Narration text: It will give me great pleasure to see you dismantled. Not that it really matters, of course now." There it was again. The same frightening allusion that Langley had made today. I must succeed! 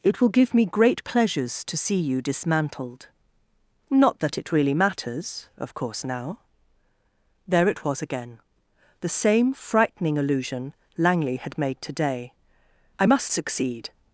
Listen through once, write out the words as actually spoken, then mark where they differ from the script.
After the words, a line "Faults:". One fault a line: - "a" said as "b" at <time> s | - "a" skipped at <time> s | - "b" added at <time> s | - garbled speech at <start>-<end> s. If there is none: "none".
It will give me great pleasures to see you dismantled. Not that it really matters, of course now." There it was again. The same frightening allusion Langley had made today. I must succeed!
Faults:
- "pleasure" said as "pleasures" at 1.0 s
- "that" skipped at 10.7 s